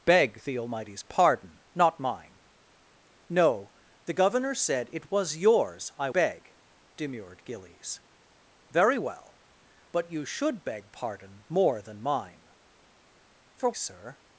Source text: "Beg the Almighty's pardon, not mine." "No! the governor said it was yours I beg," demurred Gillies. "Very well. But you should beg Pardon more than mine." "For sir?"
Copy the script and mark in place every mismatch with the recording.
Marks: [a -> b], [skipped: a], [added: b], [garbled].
"Beg the Almighty's pardon, not mine." "No! the governor said it was yours I beg," demurred Gillies. "Very well. But you should beg Pardon more than mine." "For sir?"